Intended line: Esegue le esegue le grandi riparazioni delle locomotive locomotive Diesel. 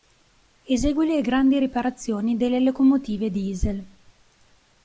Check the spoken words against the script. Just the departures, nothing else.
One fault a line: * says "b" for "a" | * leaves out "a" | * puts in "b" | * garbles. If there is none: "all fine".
* leaves out "esegue le"
* leaves out "locomotive"